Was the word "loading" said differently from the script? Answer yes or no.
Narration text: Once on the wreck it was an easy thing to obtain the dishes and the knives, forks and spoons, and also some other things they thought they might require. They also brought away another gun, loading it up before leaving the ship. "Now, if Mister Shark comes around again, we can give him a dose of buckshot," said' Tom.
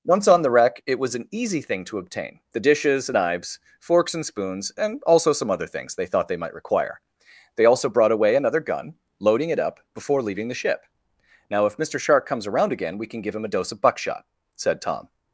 no